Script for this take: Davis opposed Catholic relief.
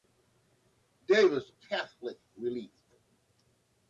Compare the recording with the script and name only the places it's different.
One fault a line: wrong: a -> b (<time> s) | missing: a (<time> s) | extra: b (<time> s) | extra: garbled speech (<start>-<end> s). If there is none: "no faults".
missing: opposed (1.5 s)